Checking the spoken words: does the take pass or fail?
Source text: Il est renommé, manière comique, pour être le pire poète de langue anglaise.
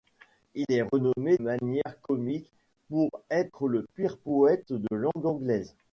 pass